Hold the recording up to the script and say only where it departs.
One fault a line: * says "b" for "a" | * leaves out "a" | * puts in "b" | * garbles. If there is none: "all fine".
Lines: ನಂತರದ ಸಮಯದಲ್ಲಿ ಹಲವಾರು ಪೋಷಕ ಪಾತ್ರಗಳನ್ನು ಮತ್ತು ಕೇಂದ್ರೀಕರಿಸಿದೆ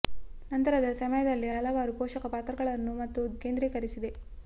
all fine